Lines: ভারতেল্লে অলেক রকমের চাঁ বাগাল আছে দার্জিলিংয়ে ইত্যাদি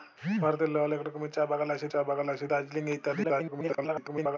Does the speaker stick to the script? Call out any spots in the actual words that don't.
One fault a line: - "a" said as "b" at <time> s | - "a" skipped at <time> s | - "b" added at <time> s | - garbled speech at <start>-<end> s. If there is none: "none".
- "চাঁ বাগাল আছে" added at 1.9 s
- garbled speech at 3.2-4.4 s